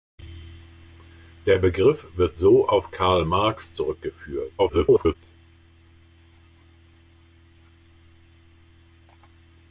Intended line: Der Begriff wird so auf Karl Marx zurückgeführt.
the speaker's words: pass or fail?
fail